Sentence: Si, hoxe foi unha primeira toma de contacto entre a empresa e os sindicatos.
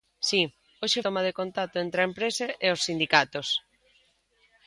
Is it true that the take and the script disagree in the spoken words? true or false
true